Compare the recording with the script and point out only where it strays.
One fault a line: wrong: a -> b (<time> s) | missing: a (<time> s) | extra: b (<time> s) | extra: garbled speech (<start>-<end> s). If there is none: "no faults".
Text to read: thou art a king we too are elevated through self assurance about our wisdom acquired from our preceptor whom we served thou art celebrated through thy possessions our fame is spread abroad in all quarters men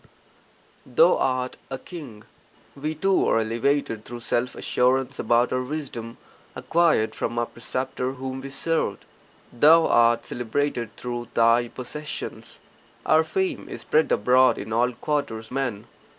no faults